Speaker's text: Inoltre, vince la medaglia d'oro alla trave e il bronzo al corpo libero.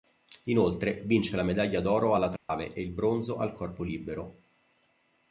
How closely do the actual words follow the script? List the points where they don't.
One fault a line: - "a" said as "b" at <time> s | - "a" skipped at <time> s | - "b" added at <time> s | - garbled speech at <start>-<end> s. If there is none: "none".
none